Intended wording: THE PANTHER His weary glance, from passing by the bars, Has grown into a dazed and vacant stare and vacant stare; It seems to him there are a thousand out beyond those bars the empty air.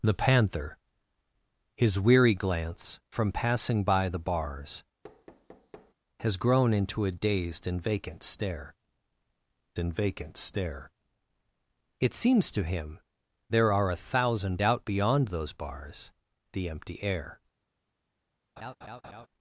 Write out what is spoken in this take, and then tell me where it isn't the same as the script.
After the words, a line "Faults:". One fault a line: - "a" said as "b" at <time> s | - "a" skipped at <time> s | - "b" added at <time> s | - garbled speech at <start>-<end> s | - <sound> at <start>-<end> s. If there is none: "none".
THE PANTHER His weary glance, from passing by the bars, Has grown into a dazed and vacant stare and vacant stare; It seems to him there are a thousand out beyond those bars the empty air.
Faults:
- thud at 5.0-5.9 s
- laugh at 18.6-19.3 s